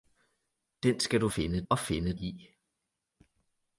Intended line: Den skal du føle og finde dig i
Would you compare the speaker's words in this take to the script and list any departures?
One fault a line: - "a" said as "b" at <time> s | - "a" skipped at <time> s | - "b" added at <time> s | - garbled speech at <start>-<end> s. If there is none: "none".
- "føle" said as "finde" at 1.3 s
- "dig" skipped at 2.2 s